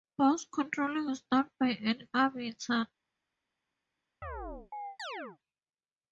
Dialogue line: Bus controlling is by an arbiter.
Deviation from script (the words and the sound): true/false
true